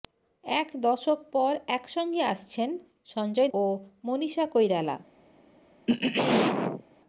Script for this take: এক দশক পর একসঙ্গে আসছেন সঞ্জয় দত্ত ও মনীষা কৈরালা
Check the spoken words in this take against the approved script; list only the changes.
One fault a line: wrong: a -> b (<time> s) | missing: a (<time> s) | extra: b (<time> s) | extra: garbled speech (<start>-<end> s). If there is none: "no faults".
missing: দত্ত (3.5 s)